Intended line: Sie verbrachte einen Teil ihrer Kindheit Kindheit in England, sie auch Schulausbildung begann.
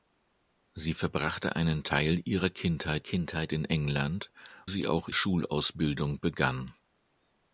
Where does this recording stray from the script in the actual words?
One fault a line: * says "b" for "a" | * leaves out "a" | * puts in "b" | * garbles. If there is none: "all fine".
all fine